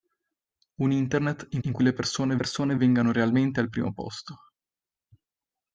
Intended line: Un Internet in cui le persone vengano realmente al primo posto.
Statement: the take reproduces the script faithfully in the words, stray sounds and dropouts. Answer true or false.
false